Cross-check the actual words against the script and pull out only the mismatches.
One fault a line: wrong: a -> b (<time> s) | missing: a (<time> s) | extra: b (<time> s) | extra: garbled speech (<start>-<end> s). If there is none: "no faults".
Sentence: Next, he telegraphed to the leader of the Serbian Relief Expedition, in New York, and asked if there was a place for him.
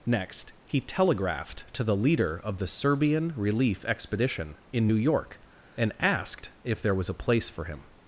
no faults